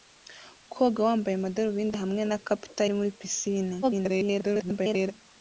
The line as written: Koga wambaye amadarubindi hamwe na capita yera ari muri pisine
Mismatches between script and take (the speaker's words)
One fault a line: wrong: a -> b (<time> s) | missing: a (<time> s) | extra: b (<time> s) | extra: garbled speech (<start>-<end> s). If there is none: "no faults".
missing: yera (2.8 s)
extra: garbled speech (3.8-5.1 s)